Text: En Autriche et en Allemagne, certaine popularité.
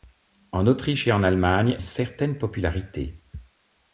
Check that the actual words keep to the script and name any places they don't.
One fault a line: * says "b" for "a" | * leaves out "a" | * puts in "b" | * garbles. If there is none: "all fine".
all fine